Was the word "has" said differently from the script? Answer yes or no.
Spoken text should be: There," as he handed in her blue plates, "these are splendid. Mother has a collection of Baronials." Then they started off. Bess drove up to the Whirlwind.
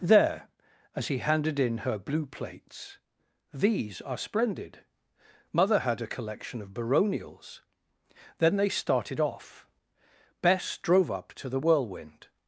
yes